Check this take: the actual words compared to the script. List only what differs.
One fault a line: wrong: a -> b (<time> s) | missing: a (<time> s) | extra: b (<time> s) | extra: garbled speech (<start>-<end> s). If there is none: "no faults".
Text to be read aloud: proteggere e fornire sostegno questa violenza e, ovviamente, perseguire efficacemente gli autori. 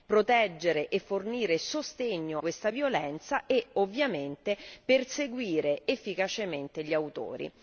no faults